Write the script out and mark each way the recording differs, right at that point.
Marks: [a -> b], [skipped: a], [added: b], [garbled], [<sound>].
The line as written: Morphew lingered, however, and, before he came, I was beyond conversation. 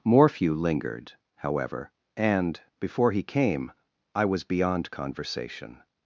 Morphew lingered, however, and, before he came, I was beyond conversation.